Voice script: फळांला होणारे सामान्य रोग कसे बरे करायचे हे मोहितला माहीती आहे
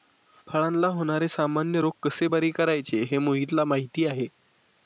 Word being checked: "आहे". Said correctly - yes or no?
yes